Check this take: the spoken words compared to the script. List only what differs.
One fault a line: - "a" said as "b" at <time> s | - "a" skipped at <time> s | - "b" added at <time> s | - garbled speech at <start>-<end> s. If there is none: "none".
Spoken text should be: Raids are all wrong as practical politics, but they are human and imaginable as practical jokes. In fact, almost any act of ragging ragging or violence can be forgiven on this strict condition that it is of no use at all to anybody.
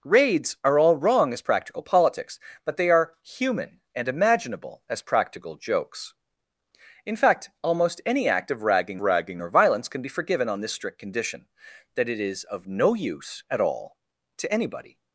none